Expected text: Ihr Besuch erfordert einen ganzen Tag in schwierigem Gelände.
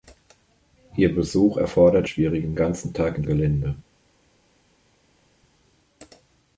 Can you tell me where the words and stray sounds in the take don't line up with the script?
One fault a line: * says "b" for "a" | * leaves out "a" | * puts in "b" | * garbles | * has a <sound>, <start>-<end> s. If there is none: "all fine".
* says "schwierigem" for "einen"
* leaves out "schwierigem"